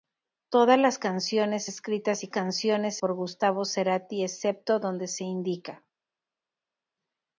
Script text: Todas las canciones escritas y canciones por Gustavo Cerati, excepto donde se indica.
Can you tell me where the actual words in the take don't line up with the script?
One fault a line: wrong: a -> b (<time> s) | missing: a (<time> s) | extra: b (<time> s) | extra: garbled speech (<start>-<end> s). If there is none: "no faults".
no faults